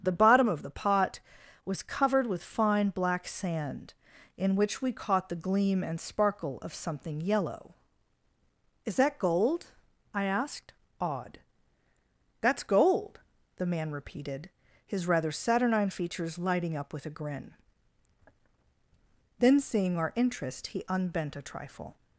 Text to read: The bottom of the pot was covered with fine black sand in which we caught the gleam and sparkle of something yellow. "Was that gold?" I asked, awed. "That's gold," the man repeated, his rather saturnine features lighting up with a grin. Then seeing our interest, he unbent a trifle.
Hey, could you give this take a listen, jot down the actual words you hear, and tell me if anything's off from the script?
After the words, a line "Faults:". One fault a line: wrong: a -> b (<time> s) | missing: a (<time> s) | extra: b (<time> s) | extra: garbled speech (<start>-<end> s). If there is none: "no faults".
The bottom of the pot was covered with fine black sand in which we caught the gleam and sparkle of something yellow. "Is that gold?" I asked, awed. "That's gold," the man repeated, his rather saturnine features lighting up with a grin. Then seeing our interest, he unbent a trifle.
Faults:
wrong: Was -> Is (8.8 s)